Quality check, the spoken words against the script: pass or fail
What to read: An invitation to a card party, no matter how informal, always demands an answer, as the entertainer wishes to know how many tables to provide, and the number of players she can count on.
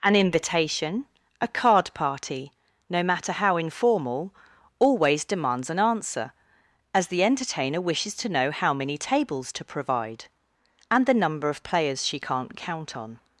fail